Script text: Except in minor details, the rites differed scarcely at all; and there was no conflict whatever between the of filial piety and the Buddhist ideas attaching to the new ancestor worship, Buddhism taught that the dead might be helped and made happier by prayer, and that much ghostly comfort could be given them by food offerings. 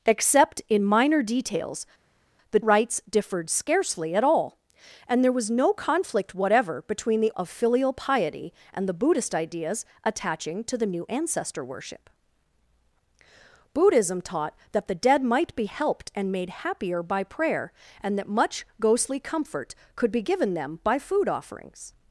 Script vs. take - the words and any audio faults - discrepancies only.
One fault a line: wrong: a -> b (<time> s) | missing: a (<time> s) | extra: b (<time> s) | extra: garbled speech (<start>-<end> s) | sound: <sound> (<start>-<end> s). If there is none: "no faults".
no faults